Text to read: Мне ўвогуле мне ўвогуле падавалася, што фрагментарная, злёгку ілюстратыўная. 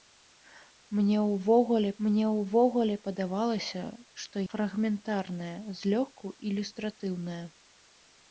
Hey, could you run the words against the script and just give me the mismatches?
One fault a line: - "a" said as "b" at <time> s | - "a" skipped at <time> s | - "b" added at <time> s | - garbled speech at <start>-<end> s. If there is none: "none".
none